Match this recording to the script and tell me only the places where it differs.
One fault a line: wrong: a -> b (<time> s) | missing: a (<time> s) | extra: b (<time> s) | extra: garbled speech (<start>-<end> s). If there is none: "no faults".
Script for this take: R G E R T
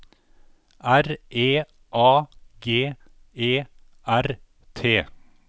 extra: E A (1.3 s)